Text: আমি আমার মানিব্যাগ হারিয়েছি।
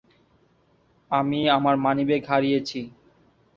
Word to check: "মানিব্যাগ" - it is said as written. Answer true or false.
true